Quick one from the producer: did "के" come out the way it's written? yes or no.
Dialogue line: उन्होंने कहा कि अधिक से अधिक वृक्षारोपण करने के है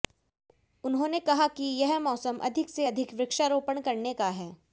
no